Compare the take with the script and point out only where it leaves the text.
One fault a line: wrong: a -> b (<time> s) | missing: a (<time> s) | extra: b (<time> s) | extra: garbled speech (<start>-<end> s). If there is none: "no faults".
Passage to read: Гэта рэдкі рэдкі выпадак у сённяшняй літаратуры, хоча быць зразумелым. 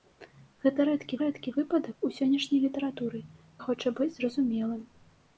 no faults